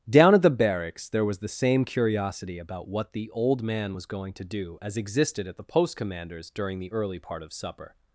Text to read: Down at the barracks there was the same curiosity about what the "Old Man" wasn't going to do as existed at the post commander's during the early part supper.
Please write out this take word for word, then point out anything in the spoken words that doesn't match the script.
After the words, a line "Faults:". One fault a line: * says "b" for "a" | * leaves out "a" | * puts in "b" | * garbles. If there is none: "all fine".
Down at the barracks there was the same curiosity about what the "Old Man" was going to do as existed at the post commander's during the early part of supper.
Faults:
* says "was" for "wasn't"
* puts in "of"